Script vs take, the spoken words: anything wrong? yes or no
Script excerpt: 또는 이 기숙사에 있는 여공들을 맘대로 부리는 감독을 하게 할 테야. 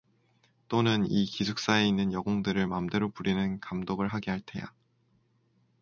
no